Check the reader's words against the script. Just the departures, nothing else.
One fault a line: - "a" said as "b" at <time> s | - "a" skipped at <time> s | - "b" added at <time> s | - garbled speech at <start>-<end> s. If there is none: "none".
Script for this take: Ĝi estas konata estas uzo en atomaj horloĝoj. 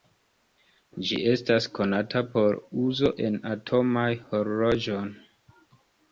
- "estas" said as "por" at 2.4 s